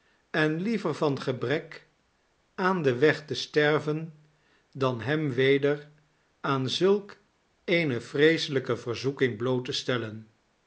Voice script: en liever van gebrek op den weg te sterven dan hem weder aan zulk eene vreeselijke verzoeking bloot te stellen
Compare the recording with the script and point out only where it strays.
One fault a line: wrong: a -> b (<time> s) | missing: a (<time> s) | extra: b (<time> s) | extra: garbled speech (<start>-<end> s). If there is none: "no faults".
wrong: op -> aan (2.5 s)